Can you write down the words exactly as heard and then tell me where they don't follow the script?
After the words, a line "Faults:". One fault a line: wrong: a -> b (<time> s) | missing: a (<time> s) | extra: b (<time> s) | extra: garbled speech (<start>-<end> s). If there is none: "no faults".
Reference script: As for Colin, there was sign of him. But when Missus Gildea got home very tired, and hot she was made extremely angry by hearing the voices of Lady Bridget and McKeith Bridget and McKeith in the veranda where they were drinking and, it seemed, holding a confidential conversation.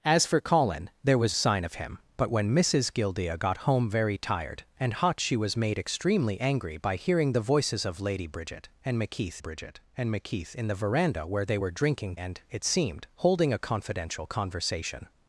As for Colin, there was sign of him. But when Missus Gildea got home very tired, and hot she was made extremely angry by hearing the voices of Lady Bridget and McKeith Bridget and McKeith in the veranda where they were drinking and, it seemed, holding a confidential conversation.
Faults:
no faults